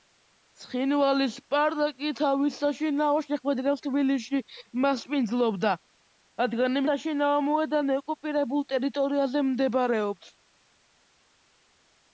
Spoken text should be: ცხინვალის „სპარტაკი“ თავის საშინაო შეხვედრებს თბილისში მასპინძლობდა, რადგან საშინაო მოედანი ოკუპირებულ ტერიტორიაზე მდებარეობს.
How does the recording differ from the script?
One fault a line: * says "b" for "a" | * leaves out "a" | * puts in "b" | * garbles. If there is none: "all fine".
all fine